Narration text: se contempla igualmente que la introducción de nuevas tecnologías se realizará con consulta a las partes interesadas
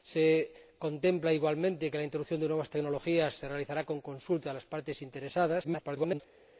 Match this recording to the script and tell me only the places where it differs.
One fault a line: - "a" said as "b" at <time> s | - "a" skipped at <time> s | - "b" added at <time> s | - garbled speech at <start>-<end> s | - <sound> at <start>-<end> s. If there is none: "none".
- garbled speech at 5.6-6.2 s